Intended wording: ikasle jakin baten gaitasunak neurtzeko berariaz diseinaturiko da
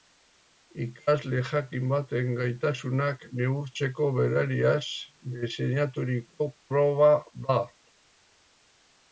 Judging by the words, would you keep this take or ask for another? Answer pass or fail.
fail